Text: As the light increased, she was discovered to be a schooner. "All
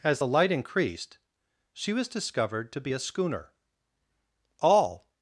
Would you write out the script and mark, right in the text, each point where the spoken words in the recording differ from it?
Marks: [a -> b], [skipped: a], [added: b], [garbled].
As the light increased, she was discovered to be a schooner. "All